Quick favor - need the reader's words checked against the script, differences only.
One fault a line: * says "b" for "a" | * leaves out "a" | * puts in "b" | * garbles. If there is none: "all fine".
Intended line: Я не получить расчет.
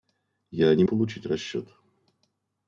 all fine